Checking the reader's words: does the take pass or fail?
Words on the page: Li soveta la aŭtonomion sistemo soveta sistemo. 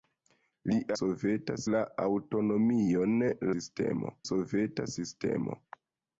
pass